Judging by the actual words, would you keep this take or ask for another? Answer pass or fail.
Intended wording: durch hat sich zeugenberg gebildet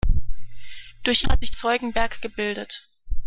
pass